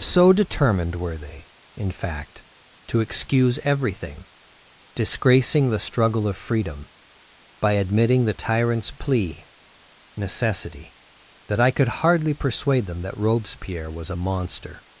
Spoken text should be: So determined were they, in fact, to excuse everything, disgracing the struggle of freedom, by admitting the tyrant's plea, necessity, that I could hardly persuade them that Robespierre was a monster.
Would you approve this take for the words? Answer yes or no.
yes